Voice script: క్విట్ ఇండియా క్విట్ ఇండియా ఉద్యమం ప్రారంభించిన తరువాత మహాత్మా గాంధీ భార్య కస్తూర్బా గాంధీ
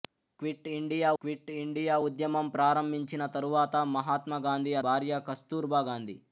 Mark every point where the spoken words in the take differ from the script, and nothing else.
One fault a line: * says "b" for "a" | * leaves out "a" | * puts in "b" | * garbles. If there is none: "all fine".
all fine